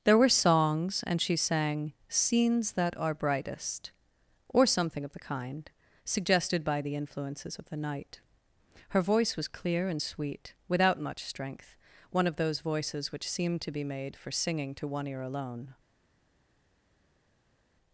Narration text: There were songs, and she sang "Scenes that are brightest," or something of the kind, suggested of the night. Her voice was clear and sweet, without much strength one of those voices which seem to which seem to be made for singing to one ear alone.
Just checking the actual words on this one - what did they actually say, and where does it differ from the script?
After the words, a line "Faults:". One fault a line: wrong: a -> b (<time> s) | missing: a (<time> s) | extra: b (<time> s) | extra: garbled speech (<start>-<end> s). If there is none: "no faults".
There were songs, and she sang "Scenes that are brightest," or something of the kind, suggested by the influences of the night. Her voice was clear and sweet, without much strength one of those voices which seem to be made for singing to one ear alone.
Faults:
extra: by the influences (6.6 s)
missing: which seem to (13.7 s)